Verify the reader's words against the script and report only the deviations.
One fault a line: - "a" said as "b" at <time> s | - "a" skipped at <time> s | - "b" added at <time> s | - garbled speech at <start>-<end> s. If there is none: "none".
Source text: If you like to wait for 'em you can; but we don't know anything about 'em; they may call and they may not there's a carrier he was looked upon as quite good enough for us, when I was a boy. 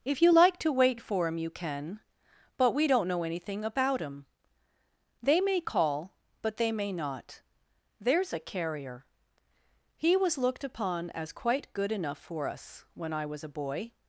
- "and" said as "but" at 6.4 s